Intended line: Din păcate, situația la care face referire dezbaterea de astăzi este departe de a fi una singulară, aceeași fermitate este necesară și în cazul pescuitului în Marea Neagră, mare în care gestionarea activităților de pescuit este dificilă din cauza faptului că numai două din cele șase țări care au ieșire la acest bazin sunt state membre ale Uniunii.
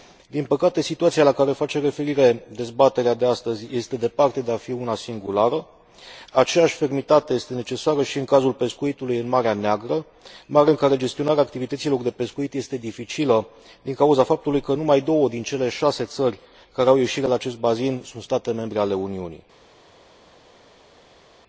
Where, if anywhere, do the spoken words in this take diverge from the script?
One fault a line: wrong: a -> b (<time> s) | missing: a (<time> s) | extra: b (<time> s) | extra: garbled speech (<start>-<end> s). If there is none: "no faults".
no faults